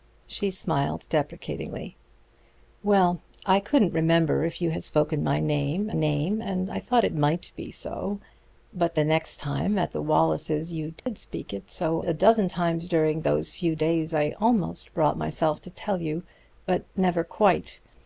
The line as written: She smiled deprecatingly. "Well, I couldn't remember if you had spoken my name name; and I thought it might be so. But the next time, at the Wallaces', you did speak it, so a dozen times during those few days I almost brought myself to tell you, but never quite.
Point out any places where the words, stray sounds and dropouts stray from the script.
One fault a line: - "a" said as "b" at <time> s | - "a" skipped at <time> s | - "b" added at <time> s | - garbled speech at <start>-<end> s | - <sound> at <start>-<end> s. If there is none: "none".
- dropout at 11.0-11.1 s